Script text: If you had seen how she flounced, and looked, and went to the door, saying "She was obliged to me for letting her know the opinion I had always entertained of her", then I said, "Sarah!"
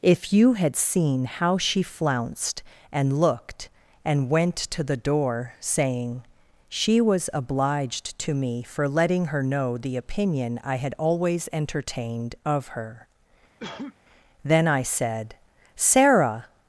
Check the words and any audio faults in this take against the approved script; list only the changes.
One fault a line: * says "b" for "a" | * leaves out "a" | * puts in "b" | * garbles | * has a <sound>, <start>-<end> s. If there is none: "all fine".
* has a cough, 13.6-14.0 s